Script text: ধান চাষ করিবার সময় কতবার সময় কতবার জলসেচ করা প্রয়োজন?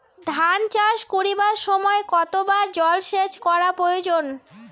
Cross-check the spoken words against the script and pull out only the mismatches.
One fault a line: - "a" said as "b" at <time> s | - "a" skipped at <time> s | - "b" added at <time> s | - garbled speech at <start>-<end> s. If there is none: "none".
- "সময় কতবার" skipped at 2.7 s